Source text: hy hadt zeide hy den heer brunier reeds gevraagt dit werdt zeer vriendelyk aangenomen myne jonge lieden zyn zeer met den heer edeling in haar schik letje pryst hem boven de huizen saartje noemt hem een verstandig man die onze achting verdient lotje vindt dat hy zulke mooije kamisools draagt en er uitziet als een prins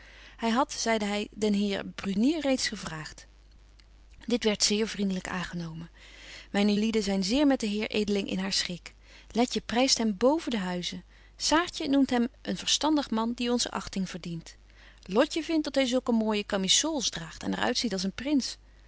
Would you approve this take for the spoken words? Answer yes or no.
no